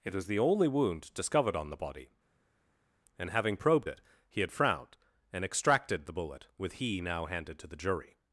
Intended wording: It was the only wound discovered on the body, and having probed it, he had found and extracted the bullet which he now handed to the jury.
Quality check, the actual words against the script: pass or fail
fail